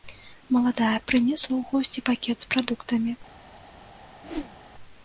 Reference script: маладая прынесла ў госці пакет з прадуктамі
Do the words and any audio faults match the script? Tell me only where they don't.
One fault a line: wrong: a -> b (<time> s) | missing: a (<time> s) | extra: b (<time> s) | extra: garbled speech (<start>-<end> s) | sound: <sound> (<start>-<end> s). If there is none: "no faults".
sound: whoosh (4.2-4.6 s)